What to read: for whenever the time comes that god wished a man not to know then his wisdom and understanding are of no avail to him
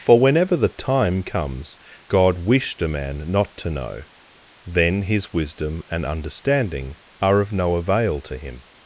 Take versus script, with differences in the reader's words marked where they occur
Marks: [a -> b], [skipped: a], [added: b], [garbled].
for whenever the time comes [skipped: that] god wished a man not to know then his wisdom and understanding are of no avail to him